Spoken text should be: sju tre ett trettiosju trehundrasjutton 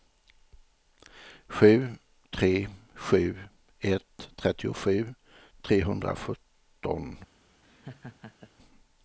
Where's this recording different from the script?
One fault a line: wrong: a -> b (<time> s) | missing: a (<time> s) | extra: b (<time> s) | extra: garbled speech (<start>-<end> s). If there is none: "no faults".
extra: sju (2.9 s)